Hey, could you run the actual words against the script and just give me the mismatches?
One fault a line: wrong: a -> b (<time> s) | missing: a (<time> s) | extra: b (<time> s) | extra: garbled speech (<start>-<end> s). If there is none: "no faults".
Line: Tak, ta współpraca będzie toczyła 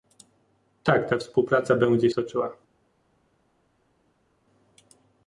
no faults